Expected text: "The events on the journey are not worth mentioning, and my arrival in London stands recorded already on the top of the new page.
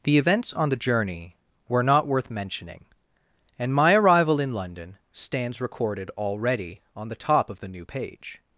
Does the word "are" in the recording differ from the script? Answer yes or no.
yes